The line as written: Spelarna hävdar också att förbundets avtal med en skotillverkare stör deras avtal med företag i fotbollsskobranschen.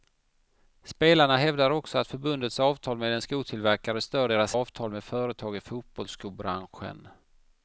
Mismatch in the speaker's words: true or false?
false